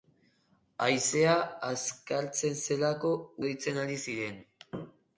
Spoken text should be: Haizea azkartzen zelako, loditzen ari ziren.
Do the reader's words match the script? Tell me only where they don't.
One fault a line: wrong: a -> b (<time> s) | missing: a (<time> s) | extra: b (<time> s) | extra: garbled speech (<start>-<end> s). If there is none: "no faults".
no faults